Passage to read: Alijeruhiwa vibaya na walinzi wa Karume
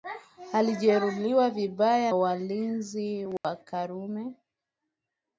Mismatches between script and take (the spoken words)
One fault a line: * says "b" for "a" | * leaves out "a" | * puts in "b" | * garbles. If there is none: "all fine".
* leaves out "na"